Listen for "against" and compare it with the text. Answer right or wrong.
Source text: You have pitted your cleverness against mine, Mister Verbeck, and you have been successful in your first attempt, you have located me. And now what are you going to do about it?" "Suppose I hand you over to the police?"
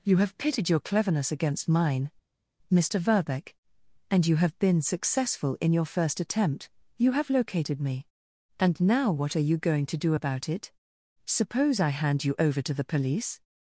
right